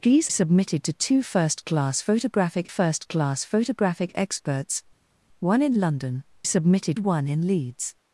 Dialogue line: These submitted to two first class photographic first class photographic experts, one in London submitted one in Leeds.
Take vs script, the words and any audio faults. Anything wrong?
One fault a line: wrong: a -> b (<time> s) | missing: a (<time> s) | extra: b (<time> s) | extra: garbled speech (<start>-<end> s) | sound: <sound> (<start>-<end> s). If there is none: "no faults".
no faults